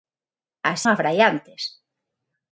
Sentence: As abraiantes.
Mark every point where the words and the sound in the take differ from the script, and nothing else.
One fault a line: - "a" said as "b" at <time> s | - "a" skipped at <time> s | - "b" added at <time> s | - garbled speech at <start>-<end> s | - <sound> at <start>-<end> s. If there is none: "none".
none